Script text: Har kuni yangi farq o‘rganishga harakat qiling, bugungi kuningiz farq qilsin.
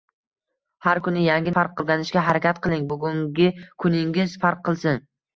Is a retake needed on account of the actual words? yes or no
no